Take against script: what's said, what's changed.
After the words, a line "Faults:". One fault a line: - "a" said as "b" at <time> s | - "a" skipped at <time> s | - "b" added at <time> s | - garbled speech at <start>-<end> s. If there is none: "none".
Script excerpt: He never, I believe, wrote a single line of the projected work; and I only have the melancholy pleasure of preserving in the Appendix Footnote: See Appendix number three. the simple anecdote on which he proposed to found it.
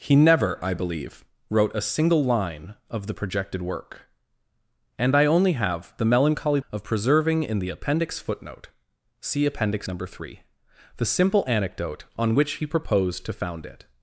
He never, I believe, wrote a single line of the projected work; and I only have the melancholy of preserving in the Appendix Footnote: See Appendix number three. the simple anecdote on which he proposed to found it.
Faults:
- "pleasure" skipped at 6.6 s